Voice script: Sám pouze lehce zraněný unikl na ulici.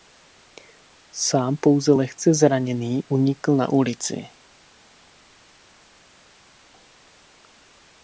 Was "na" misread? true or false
false